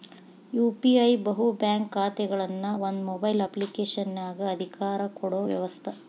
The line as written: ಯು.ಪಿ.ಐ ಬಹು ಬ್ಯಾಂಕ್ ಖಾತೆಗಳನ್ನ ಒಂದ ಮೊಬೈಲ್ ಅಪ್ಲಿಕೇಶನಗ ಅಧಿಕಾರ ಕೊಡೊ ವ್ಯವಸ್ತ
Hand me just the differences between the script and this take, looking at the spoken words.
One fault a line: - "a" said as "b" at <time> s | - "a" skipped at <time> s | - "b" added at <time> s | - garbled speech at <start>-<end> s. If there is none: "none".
none